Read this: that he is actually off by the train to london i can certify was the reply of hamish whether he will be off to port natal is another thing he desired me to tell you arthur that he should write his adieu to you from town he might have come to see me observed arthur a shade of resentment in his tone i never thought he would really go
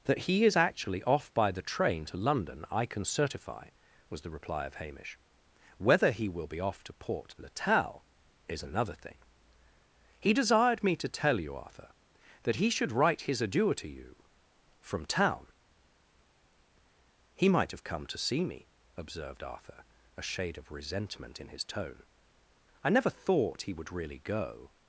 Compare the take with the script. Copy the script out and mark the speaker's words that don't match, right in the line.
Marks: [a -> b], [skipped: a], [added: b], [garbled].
that he is actually off by the train to london i can certify was the reply of hamish whether he will be off to port natal is another thing he desired me to tell you arthur that he should write his adieu to you from town he might have come to see me observed arthur a shade of resentment in his tone i never thought he would really go